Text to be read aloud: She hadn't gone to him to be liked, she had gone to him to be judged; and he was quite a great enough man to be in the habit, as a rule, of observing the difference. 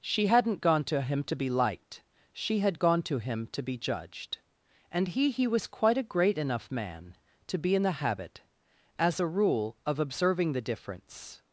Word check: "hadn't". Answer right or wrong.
right